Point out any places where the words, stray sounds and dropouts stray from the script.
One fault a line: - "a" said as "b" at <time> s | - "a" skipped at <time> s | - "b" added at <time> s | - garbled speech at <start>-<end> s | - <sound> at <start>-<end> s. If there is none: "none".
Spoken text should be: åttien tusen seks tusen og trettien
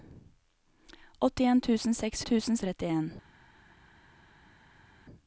none